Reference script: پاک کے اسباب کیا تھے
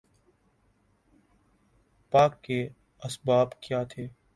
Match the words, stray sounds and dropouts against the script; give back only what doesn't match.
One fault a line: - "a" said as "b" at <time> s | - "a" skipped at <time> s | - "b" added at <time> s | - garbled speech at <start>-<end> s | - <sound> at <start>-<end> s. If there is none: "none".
none